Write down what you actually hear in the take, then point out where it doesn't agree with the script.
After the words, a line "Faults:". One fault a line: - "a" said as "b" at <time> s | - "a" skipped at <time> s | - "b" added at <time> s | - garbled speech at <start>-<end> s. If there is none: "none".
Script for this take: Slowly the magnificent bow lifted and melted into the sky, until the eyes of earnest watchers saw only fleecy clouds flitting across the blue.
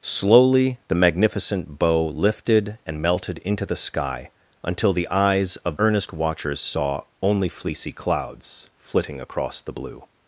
Slowly the magnificent bow lifted and melted into the sky, until the eyes of earnest watchers saw only fleecy clouds flitting across the blue.
Faults:
none